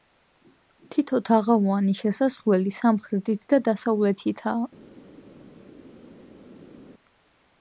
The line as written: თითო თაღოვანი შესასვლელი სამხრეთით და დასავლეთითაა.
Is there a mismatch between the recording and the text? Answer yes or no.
no